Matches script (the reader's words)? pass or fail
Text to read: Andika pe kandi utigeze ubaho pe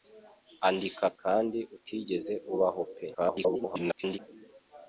fail